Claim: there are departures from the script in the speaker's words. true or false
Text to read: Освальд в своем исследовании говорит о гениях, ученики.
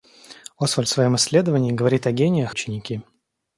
false